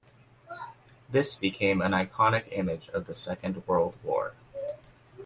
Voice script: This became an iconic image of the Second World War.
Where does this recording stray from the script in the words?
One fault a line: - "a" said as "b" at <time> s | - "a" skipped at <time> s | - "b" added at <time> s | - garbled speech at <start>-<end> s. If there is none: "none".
none